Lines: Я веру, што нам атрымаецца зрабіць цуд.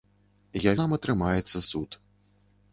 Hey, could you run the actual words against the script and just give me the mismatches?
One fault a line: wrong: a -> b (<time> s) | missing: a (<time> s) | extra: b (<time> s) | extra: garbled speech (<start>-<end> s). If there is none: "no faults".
missing: веру што (0.7 s)
missing: зрабіць (1.6 s)